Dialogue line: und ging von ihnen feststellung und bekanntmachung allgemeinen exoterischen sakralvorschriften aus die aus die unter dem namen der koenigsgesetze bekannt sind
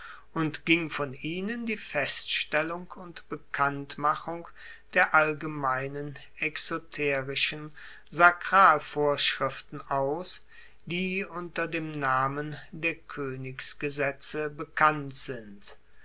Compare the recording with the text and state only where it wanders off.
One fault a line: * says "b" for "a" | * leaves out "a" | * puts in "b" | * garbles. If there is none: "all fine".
* puts in "die"
* puts in "der"
* leaves out "aus die"